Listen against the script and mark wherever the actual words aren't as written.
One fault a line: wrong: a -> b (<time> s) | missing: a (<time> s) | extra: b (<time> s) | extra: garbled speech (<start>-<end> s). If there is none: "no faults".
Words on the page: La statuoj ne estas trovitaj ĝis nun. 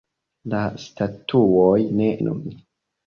missing: estas trovitaj ĝis (2.1 s)